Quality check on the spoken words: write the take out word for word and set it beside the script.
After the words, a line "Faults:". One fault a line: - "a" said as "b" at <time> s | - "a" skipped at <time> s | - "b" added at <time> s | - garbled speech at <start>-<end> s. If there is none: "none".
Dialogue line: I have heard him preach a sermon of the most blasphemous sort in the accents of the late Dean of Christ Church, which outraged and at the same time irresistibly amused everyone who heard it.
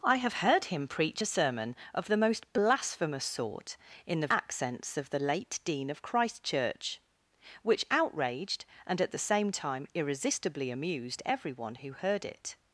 I have heard him preach a sermon of the most blasphemous sort in the accents of the late Dean of Christ Church, which outraged and at the same time irresistibly amused everyone who heard it.
Faults:
none